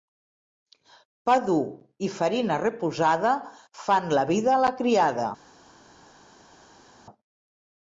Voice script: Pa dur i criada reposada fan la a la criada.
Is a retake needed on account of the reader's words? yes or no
yes